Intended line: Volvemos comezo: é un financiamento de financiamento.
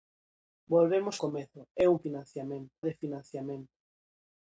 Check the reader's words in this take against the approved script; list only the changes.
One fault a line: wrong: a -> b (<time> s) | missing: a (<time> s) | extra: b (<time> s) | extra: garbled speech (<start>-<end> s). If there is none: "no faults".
no faults